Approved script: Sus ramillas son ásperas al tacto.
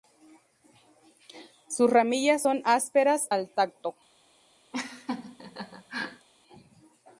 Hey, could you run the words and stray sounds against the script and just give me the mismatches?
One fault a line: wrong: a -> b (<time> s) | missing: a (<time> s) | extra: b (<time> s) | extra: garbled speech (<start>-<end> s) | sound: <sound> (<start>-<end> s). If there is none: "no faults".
sound: laugh (4.7-6.3 s)